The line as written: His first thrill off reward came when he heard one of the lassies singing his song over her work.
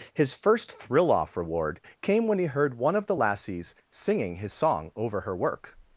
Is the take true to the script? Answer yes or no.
yes